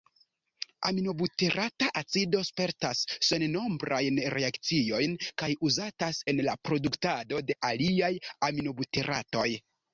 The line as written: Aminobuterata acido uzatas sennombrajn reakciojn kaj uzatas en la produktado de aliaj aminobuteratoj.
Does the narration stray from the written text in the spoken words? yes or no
yes